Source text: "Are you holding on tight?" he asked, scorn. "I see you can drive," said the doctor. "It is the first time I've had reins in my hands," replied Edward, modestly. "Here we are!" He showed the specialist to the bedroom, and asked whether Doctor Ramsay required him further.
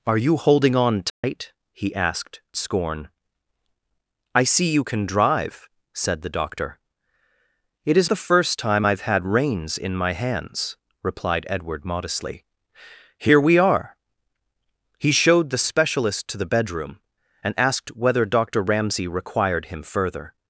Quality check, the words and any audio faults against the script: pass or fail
fail